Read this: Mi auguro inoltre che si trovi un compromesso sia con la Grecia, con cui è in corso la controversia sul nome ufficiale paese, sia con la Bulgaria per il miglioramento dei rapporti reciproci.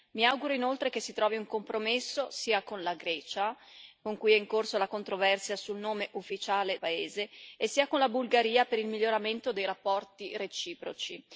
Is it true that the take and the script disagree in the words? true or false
false